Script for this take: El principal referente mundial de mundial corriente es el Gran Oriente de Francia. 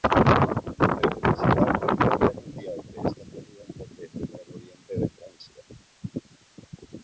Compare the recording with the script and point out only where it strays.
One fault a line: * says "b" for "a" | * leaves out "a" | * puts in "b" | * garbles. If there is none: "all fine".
* says "esta" for "mundial"